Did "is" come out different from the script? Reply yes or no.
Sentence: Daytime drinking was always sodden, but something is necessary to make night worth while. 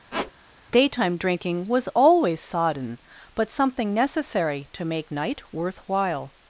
yes